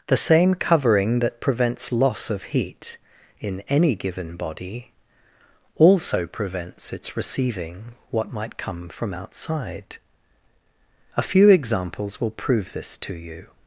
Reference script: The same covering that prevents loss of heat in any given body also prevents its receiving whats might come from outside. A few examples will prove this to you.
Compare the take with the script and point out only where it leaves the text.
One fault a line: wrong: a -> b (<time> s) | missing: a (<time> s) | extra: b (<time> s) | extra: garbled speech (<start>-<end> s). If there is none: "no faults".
wrong: whats -> what (8.1 s)